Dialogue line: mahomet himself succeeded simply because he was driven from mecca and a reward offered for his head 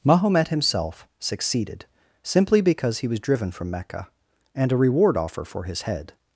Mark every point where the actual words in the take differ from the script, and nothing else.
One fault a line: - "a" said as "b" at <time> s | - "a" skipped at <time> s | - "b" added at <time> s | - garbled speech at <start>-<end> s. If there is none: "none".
- "offered" said as "offer" at 5.2 s